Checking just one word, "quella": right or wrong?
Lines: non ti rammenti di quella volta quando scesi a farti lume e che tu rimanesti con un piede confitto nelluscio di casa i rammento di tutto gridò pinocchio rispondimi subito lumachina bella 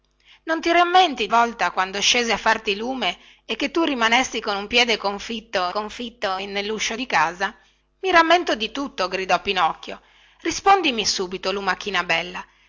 wrong